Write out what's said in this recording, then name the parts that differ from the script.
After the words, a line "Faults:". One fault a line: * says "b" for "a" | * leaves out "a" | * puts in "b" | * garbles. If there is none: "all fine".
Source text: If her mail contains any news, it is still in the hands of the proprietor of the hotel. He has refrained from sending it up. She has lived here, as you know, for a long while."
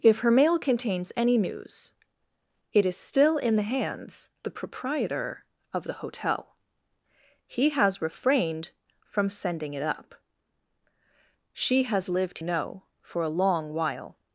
If her mail contains any news, it is still in the hands the proprietor of the hotel. He has refrained from sending it up. She has lived know, for a long while."
Faults:
* leaves out "of"
* leaves out "here as you"